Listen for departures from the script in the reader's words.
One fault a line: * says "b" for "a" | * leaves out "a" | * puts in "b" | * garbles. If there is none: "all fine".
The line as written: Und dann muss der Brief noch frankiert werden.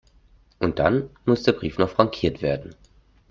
all fine